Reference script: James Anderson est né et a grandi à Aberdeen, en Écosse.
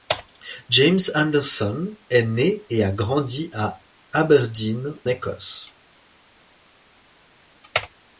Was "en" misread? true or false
true